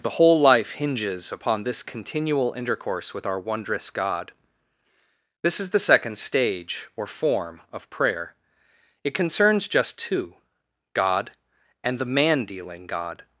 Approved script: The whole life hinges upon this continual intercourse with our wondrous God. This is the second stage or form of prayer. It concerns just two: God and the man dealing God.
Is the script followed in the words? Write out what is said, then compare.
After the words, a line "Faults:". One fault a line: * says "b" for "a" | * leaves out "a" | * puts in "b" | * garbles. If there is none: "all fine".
The whole life hinges upon this continual intercourse with our wondrous God. This is the second stage or form of prayer. It concerns just two: God and the man dealing God.
Faults:
all fine